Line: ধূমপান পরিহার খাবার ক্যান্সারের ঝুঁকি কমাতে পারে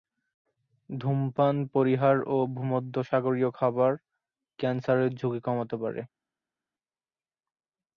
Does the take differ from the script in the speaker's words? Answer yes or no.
yes